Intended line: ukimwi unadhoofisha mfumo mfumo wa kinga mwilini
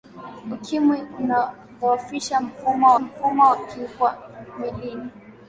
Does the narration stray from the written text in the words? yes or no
no